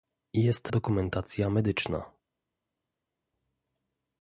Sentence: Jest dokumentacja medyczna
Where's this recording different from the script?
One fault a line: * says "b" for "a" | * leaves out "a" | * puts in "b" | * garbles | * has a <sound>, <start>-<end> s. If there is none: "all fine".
all fine